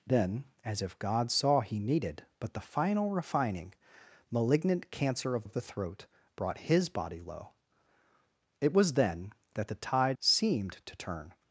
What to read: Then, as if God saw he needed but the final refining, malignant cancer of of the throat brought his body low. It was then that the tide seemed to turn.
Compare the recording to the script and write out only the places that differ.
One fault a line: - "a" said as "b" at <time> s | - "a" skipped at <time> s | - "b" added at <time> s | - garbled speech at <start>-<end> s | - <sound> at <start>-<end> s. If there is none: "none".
none